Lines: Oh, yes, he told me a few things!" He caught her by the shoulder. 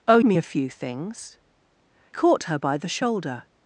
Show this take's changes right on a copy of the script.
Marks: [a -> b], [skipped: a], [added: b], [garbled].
Oh, [skipped: yes, he told] me a few things!" [skipped: He] caught her by the shoulder.